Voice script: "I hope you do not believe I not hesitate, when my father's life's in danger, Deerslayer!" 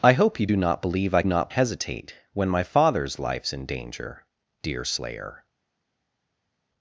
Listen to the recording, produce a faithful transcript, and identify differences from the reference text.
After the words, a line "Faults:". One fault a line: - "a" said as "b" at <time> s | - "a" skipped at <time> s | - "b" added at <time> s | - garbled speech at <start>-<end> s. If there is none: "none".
"I hope you do not believe I not hesitate, when my father's life's in danger, Deerslayer!"
Faults:
none